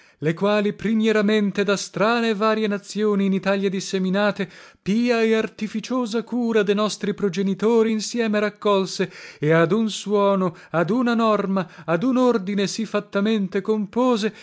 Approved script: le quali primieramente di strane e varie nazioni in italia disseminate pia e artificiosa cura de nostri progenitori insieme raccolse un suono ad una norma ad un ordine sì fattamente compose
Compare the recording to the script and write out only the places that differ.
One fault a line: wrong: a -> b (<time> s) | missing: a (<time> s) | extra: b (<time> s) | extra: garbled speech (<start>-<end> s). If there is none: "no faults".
wrong: di -> da (1.6 s)
extra: e ad (9.4 s)